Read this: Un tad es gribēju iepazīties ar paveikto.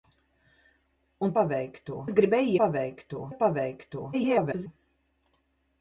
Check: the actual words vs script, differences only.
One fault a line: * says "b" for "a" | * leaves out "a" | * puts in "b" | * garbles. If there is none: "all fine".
* says "paveikto" for "tad"
* says "paveikto" for "iepazīties"
* garbles